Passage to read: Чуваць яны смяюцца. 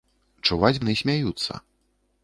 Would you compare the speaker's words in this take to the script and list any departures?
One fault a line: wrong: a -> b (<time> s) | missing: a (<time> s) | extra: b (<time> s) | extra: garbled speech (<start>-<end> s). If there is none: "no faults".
no faults